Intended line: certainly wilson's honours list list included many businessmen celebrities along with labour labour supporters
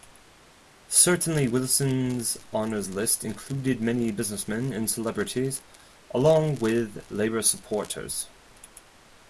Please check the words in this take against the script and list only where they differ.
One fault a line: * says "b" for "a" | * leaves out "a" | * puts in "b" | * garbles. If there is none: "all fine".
* leaves out "list"
* puts in "and"
* leaves out "labour"